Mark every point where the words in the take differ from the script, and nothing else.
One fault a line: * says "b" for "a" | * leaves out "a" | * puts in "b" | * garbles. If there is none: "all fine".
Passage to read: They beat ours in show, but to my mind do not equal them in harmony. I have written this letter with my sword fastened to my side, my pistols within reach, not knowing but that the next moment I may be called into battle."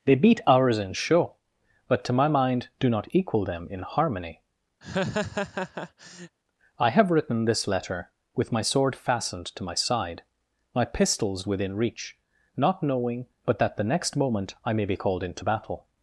all fine